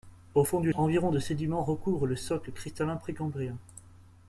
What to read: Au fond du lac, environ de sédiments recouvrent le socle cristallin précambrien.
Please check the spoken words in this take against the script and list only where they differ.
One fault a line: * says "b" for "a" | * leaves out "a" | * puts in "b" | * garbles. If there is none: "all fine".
* leaves out "lac"